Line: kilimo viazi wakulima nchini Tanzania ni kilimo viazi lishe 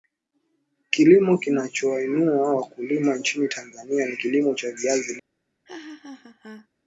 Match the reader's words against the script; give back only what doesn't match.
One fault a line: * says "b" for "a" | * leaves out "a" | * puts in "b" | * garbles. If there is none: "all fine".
* says "kinachowainua" for "viazi"
* puts in "cha"